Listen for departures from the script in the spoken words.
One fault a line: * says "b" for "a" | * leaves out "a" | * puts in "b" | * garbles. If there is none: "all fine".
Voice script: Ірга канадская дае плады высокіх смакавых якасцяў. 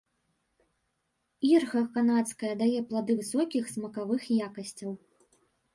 all fine